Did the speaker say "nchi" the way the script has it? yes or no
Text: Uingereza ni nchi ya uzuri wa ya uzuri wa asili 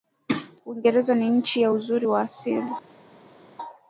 yes